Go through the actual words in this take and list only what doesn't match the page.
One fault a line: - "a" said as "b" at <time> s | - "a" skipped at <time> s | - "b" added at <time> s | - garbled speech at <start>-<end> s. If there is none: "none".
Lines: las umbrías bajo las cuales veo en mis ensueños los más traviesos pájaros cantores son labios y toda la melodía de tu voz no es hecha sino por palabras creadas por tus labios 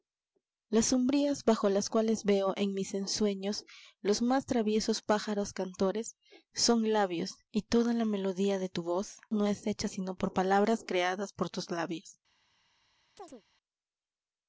none